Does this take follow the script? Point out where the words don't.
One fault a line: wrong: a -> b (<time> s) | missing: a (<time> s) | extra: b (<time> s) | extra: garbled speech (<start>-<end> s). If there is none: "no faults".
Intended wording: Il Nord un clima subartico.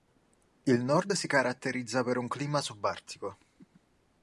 extra: si caratterizza per (1.1 s)